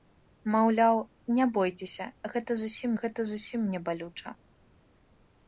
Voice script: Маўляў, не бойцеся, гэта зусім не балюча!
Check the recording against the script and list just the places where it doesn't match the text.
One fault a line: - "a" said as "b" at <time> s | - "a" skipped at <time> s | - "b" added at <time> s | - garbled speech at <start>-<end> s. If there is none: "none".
- "гэта зусім" added at 3.0 s